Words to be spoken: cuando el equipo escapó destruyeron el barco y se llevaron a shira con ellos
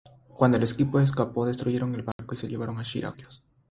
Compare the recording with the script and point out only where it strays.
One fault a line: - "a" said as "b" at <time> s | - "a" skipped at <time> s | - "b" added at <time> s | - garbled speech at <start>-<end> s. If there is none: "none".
- "con" skipped at 3.1 s